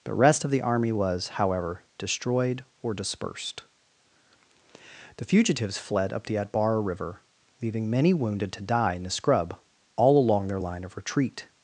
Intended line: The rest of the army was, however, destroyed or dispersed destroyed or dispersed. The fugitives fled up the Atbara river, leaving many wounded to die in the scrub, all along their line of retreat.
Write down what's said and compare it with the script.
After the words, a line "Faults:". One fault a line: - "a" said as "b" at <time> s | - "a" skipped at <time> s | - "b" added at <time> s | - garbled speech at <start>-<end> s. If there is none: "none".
The rest of the army was, however, destroyed or dispersed. The fugitives fled up the Atbara river, leaving many wounded to die in the scrub, all along their line of retreat.
Faults:
- "destroyed or dispersed" skipped at 3.6 s